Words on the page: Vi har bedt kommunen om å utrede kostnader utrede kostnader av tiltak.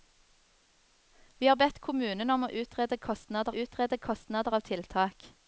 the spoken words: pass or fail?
pass